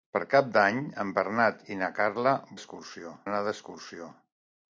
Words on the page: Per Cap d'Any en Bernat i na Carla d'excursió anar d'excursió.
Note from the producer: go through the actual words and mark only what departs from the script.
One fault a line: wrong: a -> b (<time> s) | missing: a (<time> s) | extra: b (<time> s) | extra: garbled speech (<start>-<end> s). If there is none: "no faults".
no faults